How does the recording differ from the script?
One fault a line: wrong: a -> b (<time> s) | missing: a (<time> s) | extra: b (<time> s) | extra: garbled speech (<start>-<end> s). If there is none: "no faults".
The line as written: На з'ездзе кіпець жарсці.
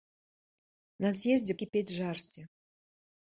no faults